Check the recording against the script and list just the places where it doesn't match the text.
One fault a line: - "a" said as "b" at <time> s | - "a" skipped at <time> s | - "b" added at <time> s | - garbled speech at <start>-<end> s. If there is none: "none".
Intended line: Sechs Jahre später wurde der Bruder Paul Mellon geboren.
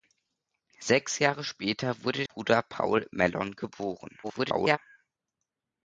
- "der" skipped at 2.2 s
- garbled speech at 4.2-4.8 s